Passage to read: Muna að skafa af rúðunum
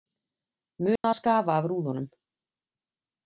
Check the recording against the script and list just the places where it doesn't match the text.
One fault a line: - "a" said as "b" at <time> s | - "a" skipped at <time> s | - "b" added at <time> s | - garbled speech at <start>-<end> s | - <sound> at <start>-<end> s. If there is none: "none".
- dropout at 1.0-1.0 s